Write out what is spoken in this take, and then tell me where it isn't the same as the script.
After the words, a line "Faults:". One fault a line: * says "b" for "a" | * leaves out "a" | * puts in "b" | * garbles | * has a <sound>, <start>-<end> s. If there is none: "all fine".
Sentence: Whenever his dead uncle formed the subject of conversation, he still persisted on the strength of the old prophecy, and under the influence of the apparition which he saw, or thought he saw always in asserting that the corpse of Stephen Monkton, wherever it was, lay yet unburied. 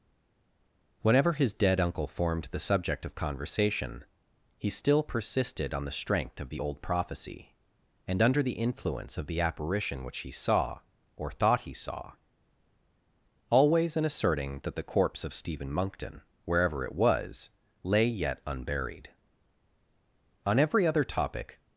Whenever his dead uncle formed the subject of conversation, he still persisted on the strength of the old prophecy, and under the influence of the apparition which he saw, or thought he saw always in asserting that the corpse of Stephen Monkton, wherever it was, lay yet unburied. On every other topic
Faults:
* puts in "On every other topic"